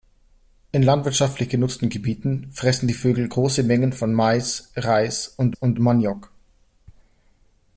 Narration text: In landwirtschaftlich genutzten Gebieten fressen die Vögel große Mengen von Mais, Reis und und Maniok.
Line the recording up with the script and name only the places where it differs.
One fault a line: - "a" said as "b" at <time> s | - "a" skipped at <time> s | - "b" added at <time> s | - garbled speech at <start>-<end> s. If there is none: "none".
none